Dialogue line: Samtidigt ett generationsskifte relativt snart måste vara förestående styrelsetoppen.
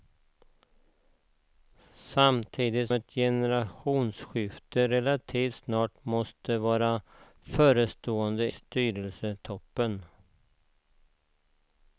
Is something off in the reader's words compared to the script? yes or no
no